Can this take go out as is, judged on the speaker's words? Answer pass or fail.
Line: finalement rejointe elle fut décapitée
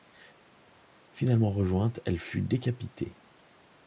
pass